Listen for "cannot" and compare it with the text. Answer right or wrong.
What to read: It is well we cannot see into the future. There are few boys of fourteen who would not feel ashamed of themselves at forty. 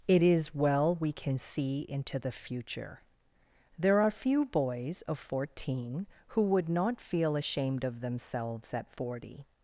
wrong